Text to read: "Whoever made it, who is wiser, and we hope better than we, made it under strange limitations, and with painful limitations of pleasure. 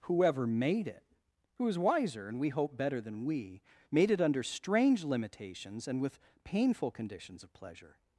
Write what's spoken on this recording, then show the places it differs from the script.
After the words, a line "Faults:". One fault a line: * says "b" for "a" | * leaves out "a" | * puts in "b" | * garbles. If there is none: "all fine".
"Whoever made it, who is wiser, and we hope better than we, made it under strange limitations, and with painful conditions of pleasure.
Faults:
* says "conditions" for "limitations"